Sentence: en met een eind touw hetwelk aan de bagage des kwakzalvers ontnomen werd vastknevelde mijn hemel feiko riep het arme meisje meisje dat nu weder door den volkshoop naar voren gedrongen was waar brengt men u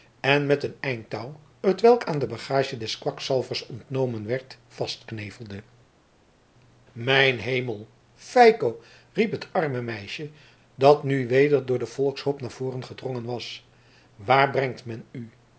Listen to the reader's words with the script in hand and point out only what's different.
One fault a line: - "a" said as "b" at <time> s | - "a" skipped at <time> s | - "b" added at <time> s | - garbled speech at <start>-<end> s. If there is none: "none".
- "meisje" skipped at 10.3 s